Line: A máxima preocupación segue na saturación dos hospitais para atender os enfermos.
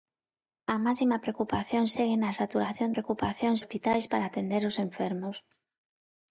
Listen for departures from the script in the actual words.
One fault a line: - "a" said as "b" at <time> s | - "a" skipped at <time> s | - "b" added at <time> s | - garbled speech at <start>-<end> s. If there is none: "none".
- "dos" said as "preocupación" at 2.9 s